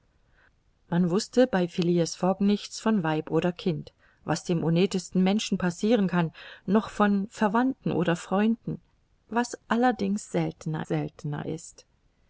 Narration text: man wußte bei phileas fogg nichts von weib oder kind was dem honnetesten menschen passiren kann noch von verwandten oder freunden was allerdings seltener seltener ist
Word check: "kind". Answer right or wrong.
right